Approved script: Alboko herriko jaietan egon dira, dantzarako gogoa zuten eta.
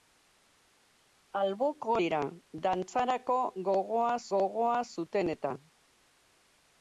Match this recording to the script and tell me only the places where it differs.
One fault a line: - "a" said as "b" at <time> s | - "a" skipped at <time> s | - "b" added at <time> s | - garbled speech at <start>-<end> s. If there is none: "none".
- "herriko jaietan egon" skipped at 2.0 s
- "gogoa" added at 4.4 s